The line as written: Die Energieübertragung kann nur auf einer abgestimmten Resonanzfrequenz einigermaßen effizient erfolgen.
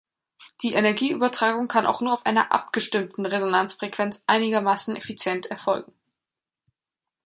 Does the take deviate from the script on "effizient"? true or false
false